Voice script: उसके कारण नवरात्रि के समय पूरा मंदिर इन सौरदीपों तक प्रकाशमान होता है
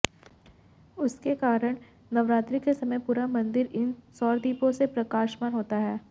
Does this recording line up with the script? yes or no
no